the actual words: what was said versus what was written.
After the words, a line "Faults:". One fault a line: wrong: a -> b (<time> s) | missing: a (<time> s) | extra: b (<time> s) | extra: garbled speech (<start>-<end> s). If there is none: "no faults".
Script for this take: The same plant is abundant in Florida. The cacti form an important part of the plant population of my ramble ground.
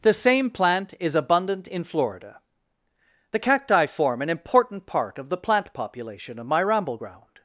The same plant is abundant in Florida. The cacti form an important part of the plant population of my ramble ground.
Faults:
no faults